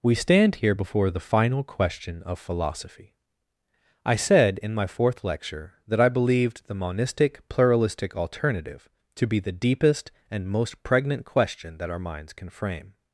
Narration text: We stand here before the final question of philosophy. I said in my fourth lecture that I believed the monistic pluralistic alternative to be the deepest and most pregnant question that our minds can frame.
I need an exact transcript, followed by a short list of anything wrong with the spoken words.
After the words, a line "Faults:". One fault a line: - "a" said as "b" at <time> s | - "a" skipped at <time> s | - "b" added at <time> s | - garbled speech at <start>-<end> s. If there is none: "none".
We stand here before the final question of philosophy. I said in my fourth lecture that I believed the monistic pluralistic alternative to be the deepest and most pregnant question that our minds can frame.
Faults:
none